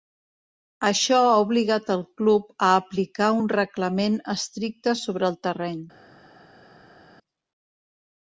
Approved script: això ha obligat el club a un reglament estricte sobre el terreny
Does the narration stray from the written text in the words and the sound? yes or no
yes